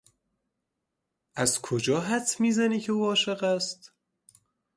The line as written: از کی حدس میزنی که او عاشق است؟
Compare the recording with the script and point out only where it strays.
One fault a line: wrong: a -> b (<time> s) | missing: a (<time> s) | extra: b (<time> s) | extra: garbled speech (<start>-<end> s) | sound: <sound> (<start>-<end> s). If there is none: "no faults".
wrong: کی -> کجا (1.6 s)